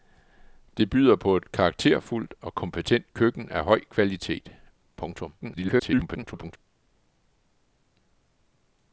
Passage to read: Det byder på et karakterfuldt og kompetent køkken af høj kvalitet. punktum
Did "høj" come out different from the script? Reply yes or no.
no